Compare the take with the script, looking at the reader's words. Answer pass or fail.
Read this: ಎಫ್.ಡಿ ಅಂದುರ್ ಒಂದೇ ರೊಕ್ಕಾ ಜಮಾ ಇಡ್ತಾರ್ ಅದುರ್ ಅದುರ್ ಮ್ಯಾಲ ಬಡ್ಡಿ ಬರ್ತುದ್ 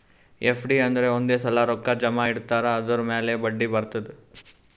fail